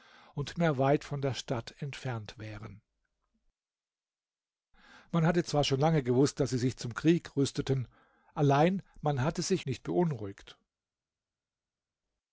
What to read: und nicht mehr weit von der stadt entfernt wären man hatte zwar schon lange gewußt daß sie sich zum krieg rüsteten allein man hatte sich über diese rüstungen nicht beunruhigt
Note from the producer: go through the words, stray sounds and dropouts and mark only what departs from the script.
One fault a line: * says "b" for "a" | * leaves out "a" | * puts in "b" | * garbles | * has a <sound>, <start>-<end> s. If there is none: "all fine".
* leaves out "nicht"
* leaves out "über diese rüstungen"